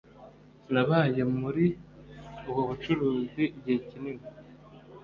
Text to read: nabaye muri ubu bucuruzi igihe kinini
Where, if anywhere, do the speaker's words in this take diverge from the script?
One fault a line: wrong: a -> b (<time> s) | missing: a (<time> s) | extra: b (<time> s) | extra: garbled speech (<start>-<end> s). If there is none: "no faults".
no faults